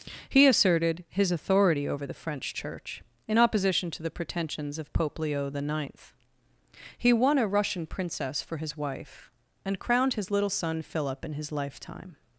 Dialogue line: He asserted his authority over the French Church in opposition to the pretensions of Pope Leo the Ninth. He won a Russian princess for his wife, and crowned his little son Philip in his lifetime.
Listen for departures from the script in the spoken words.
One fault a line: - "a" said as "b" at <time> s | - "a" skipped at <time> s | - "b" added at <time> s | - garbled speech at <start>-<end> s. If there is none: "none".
none